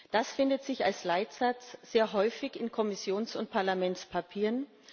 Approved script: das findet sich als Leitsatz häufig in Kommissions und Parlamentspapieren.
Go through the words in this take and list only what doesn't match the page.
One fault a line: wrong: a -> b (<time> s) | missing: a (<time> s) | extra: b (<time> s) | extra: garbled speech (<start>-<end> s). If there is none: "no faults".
extra: sehr (1.8 s)